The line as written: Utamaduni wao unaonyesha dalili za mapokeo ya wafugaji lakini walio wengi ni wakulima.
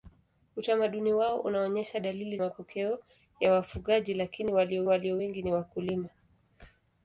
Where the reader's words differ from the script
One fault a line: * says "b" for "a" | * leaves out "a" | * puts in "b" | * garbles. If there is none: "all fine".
* leaves out "za"
* puts in "walio"